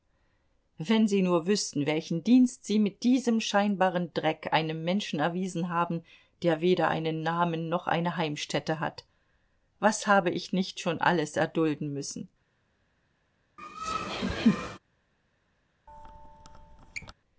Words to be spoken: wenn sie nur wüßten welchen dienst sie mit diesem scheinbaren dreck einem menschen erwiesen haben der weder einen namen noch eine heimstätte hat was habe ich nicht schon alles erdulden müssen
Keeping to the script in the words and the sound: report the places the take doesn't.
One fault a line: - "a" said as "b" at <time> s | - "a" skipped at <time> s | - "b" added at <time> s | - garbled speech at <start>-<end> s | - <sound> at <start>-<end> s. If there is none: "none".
- laugh at 13.6-14.8 s
- squeak at 15.9-17.1 s